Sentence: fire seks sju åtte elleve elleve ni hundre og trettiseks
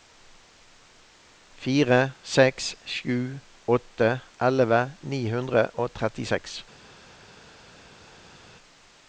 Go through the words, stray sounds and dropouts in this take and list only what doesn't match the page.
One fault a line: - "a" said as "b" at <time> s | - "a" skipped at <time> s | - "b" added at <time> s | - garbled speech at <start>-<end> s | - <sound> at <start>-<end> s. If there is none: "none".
- "elleve" skipped at 4.8 s